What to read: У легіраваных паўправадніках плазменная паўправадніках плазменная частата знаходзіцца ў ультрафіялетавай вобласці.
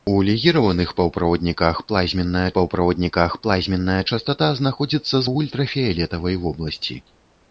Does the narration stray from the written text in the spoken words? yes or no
no